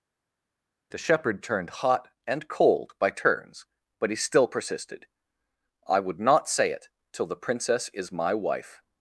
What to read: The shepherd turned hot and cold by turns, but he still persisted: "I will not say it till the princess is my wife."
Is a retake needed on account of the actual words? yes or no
yes